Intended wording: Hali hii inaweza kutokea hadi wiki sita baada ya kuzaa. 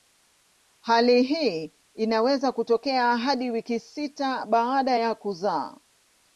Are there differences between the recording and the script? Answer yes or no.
no